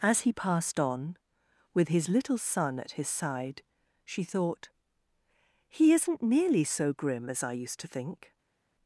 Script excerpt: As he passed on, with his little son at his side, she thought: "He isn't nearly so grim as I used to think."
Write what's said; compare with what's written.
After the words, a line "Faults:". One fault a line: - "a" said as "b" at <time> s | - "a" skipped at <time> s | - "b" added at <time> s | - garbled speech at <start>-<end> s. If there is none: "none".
As he passed on, with his little son at his side, she thought: "He isn't nearly so grim as I used to think."
Faults:
none